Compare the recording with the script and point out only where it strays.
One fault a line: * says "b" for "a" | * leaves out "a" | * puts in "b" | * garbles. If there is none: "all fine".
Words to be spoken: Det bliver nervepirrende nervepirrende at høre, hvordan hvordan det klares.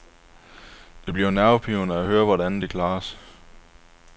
* leaves out "nervepirrende"
* leaves out "hvordan"